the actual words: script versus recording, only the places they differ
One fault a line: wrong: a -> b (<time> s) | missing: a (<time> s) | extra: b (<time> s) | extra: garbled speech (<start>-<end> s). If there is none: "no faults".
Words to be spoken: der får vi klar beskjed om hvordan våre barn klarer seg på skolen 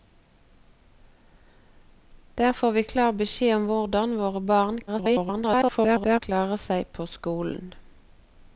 extra: garbled speech (4.9-6.2 s)